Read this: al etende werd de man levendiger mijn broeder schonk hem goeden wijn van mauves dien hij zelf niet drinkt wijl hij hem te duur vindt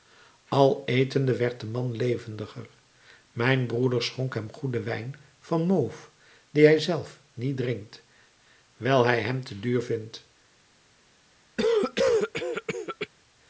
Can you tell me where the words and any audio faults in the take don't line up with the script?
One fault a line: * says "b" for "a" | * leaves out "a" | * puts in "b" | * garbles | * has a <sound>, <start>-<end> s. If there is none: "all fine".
* has a cough, 11.6-13.1 s